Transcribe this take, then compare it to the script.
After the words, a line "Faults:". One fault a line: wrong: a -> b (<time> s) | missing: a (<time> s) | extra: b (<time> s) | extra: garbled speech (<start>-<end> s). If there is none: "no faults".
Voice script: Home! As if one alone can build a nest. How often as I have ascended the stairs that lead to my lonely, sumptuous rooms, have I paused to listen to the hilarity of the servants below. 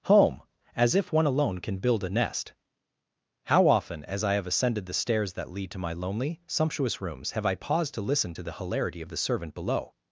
Home! As if one alone can build a nest. How often as I have ascended the stairs that lead to my lonely, sumptuous rooms, have I paused to listen to the hilarity of the servant below.
Faults:
wrong: servants -> servant (9.2 s)